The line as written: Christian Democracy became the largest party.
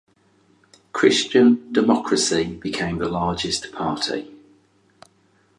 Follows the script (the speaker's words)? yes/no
yes